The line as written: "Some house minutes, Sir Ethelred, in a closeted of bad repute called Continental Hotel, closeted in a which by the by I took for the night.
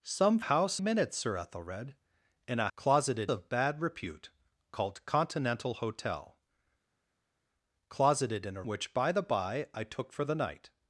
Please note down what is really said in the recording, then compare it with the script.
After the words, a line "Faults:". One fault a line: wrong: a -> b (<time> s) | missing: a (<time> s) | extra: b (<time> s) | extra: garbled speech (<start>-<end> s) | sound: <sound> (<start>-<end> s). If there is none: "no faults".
"Some house minutes, Sir Ethelred, in a closeted of bad repute called Continental Hotel, closeted in a which by the by I took for the night.
Faults:
no faults